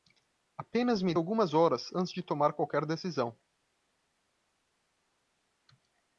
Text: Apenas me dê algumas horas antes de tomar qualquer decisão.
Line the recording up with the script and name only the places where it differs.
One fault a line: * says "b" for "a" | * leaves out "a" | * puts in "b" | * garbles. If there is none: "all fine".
* leaves out "dê"